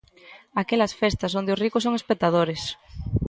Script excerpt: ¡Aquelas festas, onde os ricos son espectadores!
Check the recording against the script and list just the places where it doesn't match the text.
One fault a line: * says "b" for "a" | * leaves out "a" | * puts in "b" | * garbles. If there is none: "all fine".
all fine